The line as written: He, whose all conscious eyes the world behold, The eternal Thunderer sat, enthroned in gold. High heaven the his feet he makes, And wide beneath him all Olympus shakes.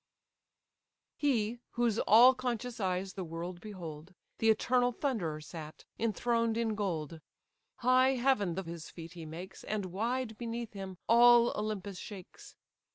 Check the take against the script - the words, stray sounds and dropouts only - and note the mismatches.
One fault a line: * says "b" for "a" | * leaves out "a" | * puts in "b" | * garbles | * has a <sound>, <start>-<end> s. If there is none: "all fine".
all fine